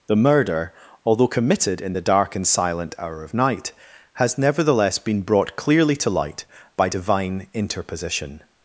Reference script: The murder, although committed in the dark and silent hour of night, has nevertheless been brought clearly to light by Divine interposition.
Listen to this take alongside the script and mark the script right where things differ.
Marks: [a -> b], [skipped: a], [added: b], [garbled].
The murder, although committed in the dark and silent hour of night, has nevertheless been brought clearly to light by Divine interposition.